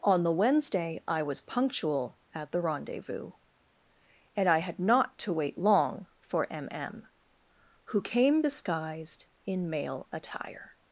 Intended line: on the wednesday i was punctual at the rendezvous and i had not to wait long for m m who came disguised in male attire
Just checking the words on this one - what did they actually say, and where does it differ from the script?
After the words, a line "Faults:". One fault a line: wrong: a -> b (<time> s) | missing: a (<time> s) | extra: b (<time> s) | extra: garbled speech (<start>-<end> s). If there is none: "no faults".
on the wednesday i was punctual at the rendezvous and i had not to wait long for m m who came disguised in male attire
Faults:
no faults